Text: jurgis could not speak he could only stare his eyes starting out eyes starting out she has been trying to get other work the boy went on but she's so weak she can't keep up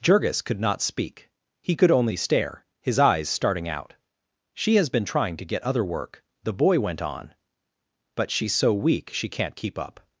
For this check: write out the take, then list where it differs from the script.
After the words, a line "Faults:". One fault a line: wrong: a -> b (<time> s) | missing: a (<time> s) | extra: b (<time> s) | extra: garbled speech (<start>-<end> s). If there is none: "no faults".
jurgis could not speak he could only stare his eyes starting out she has been trying to get other work the boy went on but she's so weak she can't keep up
Faults:
missing: eyes starting out (3.9 s)